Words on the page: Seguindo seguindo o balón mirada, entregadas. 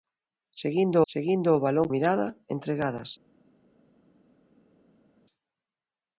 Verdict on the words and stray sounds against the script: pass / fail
pass